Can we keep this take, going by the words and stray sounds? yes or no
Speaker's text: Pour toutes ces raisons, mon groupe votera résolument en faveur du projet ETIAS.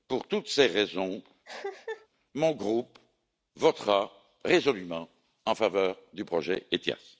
no